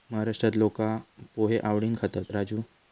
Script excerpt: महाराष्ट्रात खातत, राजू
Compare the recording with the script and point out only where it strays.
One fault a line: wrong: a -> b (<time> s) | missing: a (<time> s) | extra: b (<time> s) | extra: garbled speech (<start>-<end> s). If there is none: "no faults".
extra: लोका पोहे आवडीन (0.6 s)